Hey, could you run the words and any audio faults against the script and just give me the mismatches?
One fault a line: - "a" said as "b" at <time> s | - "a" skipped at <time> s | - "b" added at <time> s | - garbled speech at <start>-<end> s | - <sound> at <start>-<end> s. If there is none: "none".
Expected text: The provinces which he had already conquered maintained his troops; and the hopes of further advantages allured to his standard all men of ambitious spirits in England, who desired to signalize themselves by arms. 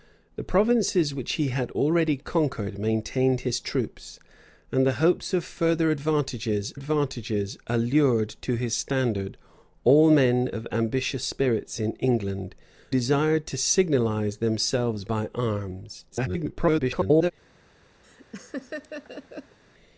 - "advantages" added at 6.7 s
- "who" skipped at 12.5 s
- garbled speech at 16.1-17.3 s
- laugh at 18.0-19.6 s